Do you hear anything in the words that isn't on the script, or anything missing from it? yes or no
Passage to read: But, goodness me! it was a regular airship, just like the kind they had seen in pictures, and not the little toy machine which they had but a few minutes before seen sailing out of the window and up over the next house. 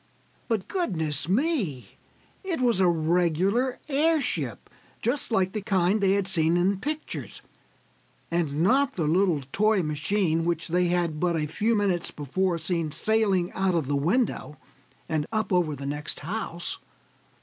no